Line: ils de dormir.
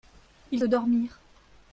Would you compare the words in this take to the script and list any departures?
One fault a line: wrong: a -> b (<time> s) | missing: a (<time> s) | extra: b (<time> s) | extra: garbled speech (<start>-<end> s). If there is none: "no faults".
no faults